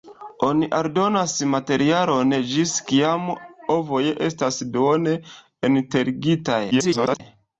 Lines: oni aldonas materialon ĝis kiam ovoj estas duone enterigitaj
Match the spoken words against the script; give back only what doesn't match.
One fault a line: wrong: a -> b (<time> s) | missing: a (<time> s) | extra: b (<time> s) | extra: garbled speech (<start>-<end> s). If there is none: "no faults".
extra: garbled speech (6.7-7.2 s)